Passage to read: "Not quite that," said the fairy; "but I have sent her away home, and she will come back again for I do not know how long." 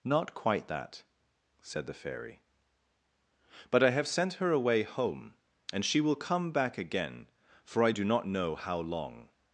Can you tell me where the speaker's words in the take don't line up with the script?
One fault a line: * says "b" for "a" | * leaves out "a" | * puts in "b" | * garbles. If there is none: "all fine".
all fine